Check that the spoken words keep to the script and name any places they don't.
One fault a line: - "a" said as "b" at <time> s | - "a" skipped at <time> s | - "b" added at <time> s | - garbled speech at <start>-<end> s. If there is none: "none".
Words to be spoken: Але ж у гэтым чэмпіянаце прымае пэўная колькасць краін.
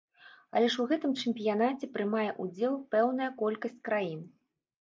- "ўдзел" added at 2.5 s